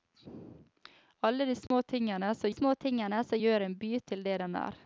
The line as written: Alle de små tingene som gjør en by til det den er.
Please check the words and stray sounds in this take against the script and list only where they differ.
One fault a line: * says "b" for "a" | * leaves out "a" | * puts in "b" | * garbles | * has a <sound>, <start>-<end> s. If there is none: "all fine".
* has a dropout, 1.7-1.7 s
* puts in "små tingene som"